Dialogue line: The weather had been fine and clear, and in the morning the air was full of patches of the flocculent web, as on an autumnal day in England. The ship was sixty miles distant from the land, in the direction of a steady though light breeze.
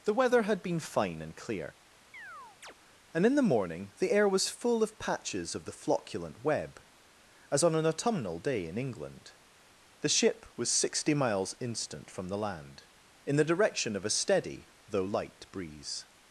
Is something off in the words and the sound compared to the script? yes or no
yes